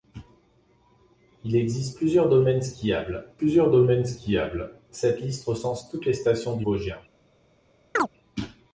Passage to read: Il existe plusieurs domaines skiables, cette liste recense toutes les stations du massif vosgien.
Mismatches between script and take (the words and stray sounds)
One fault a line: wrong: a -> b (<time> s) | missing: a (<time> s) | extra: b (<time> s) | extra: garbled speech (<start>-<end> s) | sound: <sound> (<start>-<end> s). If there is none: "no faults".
extra: plusieurs domaines skiables (3.4 s)
missing: massif (6.7 s)
sound: chirp (8.0-8.1 s)